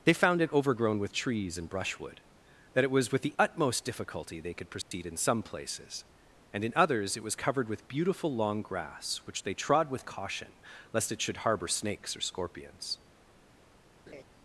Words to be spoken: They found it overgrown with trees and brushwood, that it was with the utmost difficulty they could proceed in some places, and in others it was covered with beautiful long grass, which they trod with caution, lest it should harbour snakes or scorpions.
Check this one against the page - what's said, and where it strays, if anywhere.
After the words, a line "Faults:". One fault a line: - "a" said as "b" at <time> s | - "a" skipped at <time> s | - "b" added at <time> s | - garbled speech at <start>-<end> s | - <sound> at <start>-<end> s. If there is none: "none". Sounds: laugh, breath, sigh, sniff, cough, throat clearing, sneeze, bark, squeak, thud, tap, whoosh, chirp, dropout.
They found it overgrown with trees and brushwood, that it was with the utmost difficulty they could proceed in some places, and in others it was covered with beautiful long grass, which they trod with caution, lest it should harbour snakes or scorpions.
Faults:
- dropout at 4.8-4.9 s
- laugh at 14.1-14.2 s